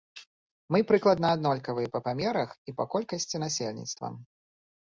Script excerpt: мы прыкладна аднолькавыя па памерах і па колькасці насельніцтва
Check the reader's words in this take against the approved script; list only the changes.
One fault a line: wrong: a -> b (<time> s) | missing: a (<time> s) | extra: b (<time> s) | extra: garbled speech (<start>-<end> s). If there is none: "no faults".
no faults